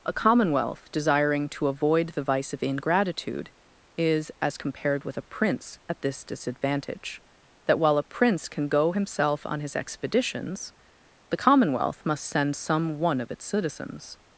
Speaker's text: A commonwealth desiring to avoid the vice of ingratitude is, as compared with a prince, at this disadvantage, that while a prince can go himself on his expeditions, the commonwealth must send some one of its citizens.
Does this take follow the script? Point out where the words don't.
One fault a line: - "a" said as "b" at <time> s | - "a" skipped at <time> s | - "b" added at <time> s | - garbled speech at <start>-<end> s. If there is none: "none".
none